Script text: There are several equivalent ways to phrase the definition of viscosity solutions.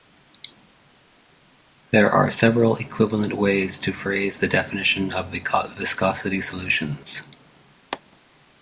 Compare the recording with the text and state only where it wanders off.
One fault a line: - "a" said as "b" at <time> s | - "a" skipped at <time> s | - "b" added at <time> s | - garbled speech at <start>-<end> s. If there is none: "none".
none